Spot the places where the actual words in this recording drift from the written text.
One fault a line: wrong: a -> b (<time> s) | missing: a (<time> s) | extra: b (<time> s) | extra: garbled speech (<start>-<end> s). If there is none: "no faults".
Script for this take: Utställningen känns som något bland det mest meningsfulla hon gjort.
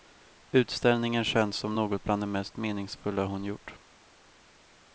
no faults